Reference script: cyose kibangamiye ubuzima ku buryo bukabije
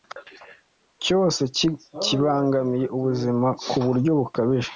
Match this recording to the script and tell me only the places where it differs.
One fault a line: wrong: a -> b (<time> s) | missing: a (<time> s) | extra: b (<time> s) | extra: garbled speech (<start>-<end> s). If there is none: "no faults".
no faults